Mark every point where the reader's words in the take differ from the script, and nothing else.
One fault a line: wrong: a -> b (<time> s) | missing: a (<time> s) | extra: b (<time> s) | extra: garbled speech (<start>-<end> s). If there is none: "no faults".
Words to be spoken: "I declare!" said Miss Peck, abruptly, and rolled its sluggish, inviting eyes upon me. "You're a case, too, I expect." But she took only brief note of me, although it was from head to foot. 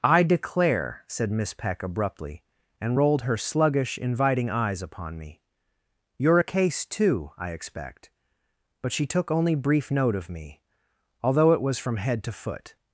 wrong: its -> her (3.2 s)